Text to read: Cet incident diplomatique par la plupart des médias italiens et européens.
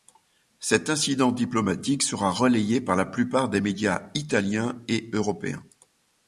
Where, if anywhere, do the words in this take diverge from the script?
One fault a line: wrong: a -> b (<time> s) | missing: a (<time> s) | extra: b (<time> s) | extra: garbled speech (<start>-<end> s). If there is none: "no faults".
extra: sera relayé (2.0 s)